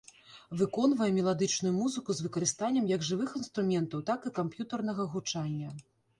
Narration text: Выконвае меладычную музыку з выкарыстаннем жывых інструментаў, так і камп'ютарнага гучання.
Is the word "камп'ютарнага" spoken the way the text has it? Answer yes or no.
yes